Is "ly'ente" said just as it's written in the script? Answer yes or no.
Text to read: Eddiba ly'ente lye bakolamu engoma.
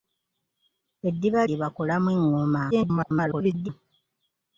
no